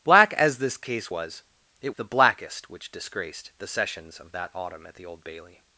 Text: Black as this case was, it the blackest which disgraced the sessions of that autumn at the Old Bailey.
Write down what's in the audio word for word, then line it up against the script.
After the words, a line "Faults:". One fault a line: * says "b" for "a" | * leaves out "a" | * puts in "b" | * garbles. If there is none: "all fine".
Black as this case was, it the blackest which disgraced the sessions of that autumn at the Old Bailey.
Faults:
all fine